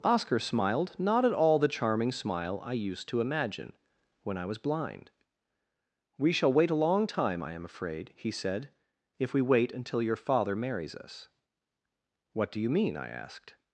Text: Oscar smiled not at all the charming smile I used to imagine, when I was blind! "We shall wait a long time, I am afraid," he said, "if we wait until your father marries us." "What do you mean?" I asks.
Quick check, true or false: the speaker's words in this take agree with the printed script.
false